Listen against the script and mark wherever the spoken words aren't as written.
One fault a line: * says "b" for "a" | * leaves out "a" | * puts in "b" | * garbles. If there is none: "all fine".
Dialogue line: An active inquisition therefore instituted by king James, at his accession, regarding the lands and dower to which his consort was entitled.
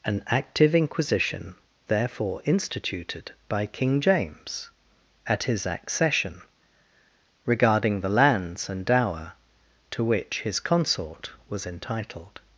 all fine